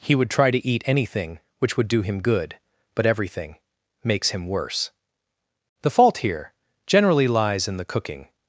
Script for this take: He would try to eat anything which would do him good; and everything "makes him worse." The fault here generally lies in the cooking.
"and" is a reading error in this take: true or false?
true